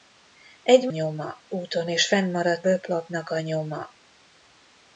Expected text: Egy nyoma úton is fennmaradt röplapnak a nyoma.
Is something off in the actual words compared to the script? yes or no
no